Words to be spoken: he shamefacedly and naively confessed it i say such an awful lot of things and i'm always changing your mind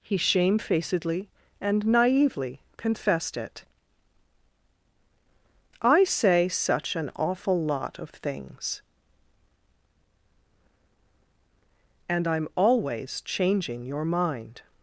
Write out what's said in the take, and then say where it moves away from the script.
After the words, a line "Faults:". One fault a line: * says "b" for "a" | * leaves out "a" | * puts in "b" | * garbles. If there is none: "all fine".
he shamefacedly and naively confessed it i say such an awful lot of things and i'm always changing your mind
Faults:
all fine